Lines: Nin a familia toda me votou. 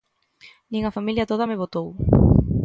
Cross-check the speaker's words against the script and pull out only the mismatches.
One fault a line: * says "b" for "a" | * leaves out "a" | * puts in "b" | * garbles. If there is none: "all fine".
all fine